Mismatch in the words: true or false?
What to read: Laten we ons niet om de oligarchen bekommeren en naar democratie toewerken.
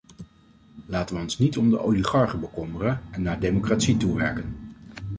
false